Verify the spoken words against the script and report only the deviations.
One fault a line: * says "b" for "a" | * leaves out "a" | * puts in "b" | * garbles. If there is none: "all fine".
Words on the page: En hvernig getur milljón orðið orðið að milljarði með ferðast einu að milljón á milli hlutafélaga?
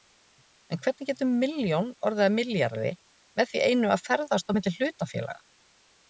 * leaves out "orðið"
* says "því" for "ferðast"
* says "ferðast" for "milljón"